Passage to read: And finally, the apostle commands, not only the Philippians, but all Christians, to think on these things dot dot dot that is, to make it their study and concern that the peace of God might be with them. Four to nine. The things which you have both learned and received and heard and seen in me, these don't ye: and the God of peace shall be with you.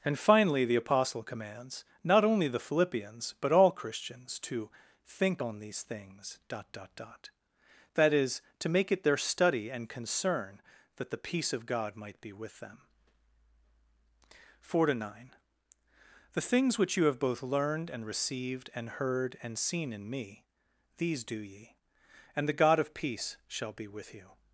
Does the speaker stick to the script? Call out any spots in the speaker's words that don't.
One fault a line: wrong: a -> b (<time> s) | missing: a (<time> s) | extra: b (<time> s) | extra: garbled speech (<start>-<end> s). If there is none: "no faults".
wrong: don't -> do (21.3 s)